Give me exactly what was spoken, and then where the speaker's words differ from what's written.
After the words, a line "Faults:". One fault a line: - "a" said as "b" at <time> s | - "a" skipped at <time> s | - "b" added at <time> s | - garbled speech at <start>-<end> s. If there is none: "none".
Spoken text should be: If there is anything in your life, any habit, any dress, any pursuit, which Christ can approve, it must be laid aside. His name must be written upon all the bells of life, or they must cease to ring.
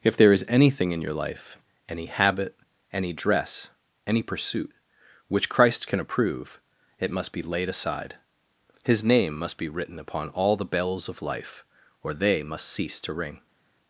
If there is anything in your life, any habit, any dress, any pursuit, which Christ can approve, it must be laid aside. His name must be written upon all the bells of life, or they must cease to ring.
Faults:
none